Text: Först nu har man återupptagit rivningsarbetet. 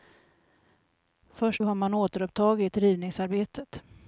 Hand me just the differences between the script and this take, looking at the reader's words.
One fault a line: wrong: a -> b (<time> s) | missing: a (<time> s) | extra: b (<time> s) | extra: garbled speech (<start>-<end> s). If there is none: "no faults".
missing: nu (1.6 s)